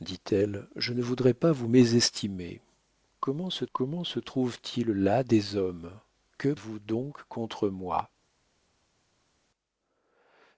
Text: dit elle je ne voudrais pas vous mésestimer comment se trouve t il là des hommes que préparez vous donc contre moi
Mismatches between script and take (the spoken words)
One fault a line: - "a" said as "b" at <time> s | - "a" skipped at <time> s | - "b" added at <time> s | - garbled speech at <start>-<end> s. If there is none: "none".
- "comment se" added at 3.7 s
- "préparez" skipped at 6.5 s